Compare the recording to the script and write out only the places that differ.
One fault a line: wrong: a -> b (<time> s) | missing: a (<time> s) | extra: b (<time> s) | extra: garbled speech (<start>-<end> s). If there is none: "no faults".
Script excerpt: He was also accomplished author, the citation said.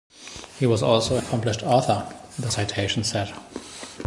no faults